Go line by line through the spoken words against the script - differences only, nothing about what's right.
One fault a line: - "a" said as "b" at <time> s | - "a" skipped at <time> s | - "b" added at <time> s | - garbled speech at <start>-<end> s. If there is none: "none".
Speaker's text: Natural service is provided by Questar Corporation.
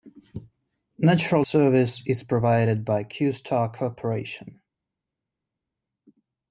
none